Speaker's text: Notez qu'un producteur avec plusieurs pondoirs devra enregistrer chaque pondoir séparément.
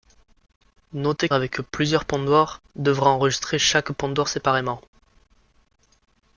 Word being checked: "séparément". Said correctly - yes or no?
yes